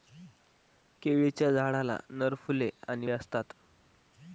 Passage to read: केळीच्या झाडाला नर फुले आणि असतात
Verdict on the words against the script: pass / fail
pass